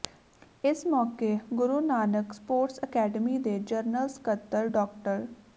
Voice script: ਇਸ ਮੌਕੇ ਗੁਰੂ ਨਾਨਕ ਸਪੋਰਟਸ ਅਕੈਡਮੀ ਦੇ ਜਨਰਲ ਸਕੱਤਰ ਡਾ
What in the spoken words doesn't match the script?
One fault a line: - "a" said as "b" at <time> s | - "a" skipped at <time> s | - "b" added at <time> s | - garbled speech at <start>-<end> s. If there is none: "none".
none